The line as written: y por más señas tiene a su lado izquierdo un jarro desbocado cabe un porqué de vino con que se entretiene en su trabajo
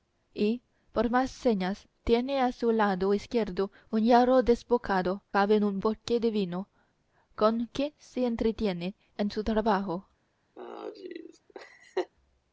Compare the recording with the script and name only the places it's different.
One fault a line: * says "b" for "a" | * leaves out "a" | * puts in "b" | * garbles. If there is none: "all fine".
all fine